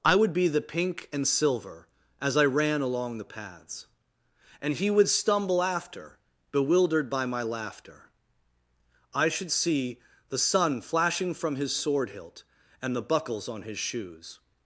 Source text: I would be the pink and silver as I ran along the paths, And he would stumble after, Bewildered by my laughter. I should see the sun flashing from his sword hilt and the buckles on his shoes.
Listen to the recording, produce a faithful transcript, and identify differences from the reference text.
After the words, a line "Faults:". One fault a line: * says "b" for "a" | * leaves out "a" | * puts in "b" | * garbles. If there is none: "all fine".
I would be the pink and silver as I ran along the paths, And he would stumble after, Bewildered by my laughter. I should see the sun flashing from his sword hilt and the buckles on his shoes.
Faults:
all fine